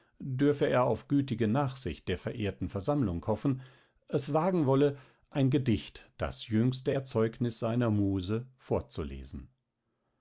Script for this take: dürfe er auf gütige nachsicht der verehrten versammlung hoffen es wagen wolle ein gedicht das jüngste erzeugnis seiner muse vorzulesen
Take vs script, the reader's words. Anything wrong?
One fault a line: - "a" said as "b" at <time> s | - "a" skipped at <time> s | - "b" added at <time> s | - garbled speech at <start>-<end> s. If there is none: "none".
none